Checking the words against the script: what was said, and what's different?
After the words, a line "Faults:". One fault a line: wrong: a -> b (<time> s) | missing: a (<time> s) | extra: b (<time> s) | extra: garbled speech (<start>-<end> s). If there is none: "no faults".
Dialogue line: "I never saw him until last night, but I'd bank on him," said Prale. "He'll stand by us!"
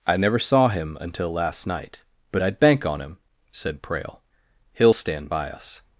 "I never saw him until last night, but I'd bank on him," said Prale. "He'll stand by us!"
Faults:
no faults